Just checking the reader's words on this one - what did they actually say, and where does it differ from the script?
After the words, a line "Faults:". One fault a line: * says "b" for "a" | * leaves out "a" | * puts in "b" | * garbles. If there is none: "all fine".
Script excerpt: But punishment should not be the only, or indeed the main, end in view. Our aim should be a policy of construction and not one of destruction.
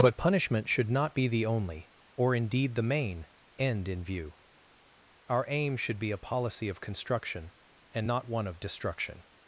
But punishment should not be the only, or indeed the main, end in view. Our aim should be a policy of construction and not one of destruction.
Faults:
all fine